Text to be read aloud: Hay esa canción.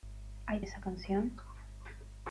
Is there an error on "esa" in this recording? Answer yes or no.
no